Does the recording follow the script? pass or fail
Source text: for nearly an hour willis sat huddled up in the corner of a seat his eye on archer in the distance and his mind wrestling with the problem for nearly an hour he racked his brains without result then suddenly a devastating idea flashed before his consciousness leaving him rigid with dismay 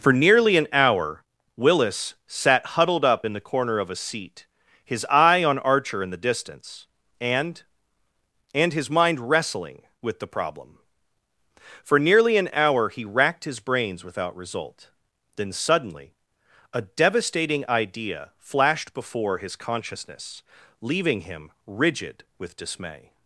fail